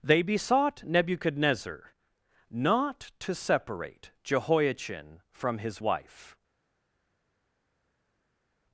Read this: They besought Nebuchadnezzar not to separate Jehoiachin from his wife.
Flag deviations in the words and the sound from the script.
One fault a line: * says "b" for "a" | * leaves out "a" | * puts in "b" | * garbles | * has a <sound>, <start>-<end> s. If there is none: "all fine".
all fine